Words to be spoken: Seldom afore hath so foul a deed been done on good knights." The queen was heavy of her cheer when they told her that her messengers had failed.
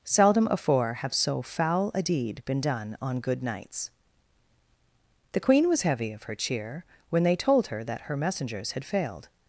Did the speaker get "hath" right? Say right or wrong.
wrong